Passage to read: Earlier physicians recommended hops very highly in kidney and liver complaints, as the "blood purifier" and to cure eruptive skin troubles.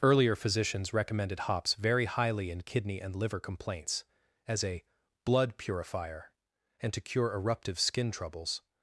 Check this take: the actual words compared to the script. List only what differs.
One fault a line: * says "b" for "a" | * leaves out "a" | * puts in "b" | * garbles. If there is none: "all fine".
* says "a" for "the"